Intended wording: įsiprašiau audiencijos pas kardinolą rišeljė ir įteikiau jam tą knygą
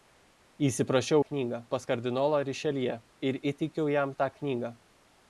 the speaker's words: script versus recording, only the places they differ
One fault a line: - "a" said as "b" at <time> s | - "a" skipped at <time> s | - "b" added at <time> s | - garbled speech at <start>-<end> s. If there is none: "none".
- "audiencijos" said as "knygą" at 1.3 s